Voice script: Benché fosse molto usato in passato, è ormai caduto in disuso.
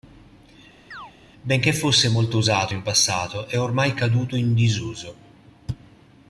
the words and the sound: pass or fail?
fail